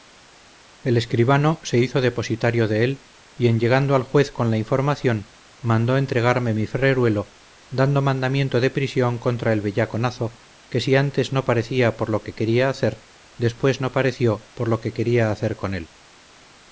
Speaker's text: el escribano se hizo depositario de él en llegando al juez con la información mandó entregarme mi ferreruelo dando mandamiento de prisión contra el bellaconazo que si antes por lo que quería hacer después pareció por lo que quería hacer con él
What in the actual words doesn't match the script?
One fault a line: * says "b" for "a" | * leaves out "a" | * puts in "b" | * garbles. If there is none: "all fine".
* puts in "y"
* puts in "no parecía"
* puts in "no"